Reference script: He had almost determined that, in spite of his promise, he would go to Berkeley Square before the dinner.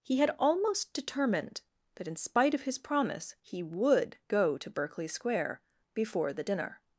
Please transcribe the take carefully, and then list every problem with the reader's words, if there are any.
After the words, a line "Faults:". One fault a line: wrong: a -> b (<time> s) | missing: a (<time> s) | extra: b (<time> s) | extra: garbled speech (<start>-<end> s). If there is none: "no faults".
He had almost determined that, in spite of his promise, he would go to Berkeley Square before the dinner.
Faults:
no faults